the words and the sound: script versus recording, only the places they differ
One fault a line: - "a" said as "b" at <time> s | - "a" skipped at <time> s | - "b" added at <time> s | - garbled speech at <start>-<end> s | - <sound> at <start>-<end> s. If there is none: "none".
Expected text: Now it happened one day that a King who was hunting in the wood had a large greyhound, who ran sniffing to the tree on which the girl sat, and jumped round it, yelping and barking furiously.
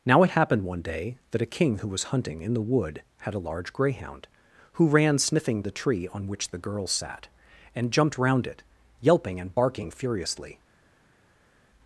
- "to" skipped at 5.6 s